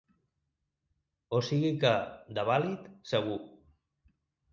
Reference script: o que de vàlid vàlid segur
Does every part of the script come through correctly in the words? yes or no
no